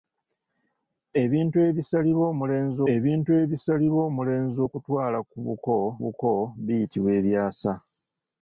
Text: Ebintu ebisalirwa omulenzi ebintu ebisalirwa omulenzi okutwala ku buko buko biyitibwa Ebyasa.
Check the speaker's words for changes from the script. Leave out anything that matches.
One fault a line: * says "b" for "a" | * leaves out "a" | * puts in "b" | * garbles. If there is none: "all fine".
all fine